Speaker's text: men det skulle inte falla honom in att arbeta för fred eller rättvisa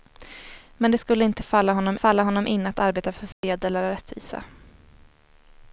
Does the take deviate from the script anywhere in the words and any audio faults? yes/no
yes